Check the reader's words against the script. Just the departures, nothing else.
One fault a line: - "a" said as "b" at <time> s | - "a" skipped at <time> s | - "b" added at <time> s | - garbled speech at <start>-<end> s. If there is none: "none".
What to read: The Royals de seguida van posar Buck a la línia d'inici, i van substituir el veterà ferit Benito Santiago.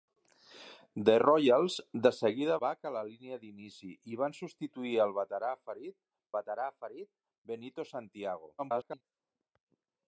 - "van posar" skipped at 2.6 s
- "veterà ferit" added at 6.4 s
- garbled speech at 8.6-9.0 s